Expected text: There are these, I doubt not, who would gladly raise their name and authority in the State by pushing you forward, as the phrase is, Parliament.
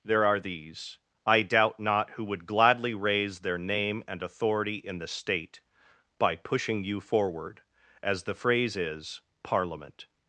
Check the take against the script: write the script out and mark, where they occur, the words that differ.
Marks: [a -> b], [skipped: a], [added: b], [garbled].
There are these, I doubt not, who would gladly raise their name and authority in the State by pushing you forward, as the phrase is, Parliament.